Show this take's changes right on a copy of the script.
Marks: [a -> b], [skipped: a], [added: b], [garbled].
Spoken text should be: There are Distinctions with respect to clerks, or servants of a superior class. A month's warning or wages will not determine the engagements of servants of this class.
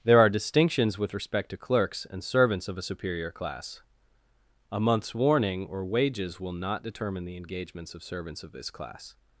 There are Distinctions with respect to clerks, [or -> and] servants of a superior class. A month's warning or wages will not determine the engagements of servants of this class.